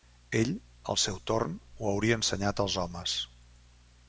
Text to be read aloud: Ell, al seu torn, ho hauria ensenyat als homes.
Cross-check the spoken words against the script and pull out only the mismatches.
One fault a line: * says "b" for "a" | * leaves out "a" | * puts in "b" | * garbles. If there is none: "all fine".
all fine